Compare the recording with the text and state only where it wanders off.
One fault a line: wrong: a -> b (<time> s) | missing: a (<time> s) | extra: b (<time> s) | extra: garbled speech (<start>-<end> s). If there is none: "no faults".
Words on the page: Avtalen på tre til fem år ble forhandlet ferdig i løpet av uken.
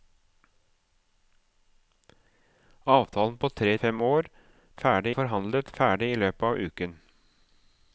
missing: til (3.8 s)
wrong: ble -> ferdig (4.8 s)